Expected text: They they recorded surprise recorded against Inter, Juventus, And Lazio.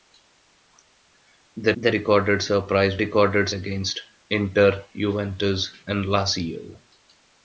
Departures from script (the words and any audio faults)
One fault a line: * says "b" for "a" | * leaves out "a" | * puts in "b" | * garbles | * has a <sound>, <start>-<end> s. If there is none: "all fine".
all fine